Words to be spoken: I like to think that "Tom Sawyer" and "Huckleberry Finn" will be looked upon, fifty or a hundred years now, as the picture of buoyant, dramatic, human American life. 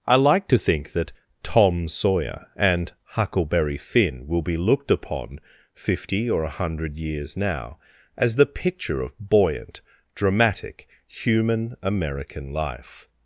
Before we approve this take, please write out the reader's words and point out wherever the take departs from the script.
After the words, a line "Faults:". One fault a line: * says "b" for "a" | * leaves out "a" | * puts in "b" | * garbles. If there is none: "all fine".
I like to think that "Tom Sawyer" and "Huckleberry Finn" will be looked upon, fifty or a hundred years now, as the picture of buoyant, dramatic, human American life.
Faults:
all fine